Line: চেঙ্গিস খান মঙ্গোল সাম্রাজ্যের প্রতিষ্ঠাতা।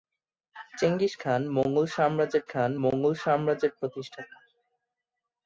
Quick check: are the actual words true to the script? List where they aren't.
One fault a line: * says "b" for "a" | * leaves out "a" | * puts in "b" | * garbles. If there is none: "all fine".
* puts in "খান মঙ্গোল সাম্রাজ্যের"